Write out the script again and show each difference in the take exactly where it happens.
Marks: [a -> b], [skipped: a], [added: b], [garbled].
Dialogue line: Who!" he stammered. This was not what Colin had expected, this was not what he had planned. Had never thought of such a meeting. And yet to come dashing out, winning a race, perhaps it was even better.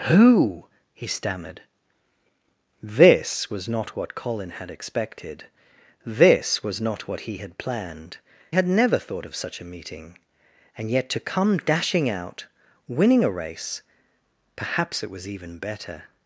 Who!" he stammered. This was not what Colin had expected, this was not what he had planned. Had never thought of such a meeting. And yet to come dashing out, winning a race, perhaps it was even better.